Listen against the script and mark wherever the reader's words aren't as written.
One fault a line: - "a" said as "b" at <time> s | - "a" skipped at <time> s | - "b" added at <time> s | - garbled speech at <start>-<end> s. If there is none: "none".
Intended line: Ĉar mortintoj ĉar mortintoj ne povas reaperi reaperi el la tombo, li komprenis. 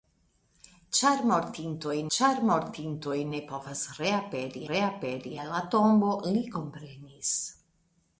none